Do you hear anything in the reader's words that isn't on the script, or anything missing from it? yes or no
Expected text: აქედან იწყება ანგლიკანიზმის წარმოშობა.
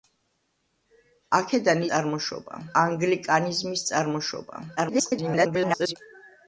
yes